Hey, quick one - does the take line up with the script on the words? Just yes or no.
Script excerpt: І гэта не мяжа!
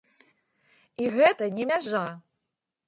yes